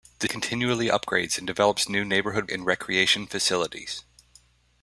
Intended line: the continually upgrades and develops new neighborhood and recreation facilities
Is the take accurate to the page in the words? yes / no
yes